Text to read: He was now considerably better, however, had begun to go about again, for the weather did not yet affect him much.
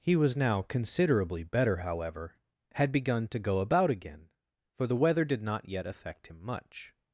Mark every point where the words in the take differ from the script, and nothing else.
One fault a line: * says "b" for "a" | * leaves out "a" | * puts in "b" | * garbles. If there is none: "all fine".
all fine